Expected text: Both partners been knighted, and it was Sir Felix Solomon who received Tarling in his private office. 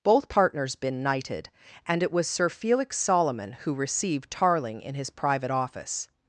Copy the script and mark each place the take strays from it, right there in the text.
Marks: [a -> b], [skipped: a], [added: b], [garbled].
Both partners been knighted, and it was Sir Felix Solomon who received Tarling in his private office.